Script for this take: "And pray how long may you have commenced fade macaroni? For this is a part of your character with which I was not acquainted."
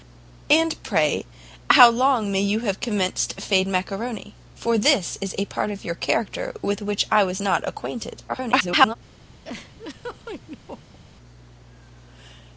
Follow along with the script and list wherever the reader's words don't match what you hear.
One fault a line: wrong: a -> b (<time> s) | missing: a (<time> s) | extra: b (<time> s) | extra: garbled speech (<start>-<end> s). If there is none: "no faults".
extra: garbled speech (8.3-9.0 s)